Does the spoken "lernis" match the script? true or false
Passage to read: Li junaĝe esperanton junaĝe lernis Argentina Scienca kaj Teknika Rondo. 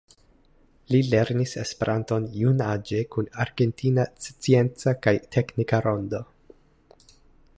false